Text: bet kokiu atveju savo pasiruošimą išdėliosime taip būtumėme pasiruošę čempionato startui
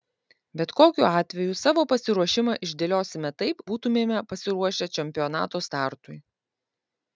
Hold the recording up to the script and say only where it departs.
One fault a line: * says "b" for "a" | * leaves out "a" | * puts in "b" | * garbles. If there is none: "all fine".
all fine